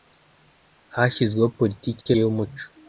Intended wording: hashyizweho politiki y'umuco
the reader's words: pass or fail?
pass